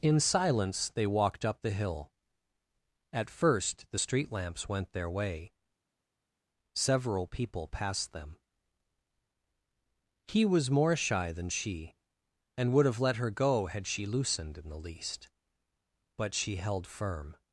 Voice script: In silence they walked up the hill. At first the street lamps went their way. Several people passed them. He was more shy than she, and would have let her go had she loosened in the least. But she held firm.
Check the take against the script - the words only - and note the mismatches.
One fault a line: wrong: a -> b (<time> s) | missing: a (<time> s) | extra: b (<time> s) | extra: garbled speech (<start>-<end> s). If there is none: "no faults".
no faults